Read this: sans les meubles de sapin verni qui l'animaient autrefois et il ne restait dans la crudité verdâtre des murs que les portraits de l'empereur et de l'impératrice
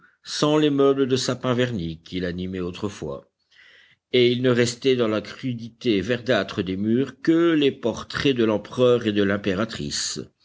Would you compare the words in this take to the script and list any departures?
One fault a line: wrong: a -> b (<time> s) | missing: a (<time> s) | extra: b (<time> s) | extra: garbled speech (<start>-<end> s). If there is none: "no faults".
no faults